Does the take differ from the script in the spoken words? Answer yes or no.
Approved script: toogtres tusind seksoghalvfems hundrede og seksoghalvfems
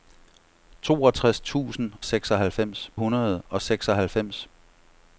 no